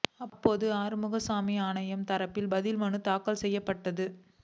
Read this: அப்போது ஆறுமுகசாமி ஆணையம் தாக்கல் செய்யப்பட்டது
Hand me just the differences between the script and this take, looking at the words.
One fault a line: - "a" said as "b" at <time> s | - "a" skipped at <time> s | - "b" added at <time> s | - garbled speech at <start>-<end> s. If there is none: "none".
- "தரப்பில் பதில் மனு" added at 2.1 s